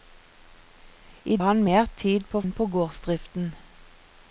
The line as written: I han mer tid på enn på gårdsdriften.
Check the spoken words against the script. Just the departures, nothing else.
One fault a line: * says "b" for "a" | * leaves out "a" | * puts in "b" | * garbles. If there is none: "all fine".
all fine